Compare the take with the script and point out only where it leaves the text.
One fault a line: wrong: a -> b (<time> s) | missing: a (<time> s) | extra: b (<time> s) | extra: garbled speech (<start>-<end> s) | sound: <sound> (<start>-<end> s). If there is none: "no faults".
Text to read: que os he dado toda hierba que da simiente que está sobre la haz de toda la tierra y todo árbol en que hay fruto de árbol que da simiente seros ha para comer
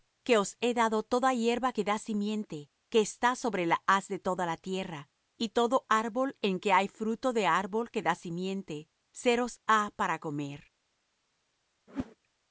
sound: whoosh (11.9-12.2 s)